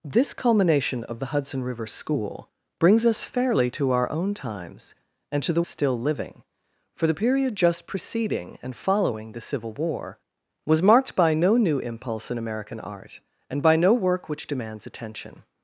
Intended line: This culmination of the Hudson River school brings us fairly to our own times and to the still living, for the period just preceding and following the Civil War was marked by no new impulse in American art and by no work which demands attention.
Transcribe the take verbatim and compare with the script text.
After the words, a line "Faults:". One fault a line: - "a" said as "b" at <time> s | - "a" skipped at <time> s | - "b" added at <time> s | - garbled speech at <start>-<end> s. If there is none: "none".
This culmination of the Hudson River school brings us fairly to our own times and to the still living, for the period just preceding and following the Civil War was marked by no new impulse in American art and by no work which demands attention.
Faults:
none